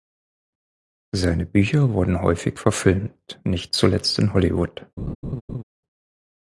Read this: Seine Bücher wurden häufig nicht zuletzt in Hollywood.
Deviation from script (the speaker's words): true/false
true